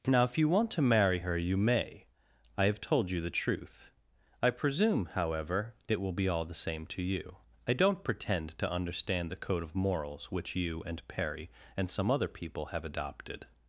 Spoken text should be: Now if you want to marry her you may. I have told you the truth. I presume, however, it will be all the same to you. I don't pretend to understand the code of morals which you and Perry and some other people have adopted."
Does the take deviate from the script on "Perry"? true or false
false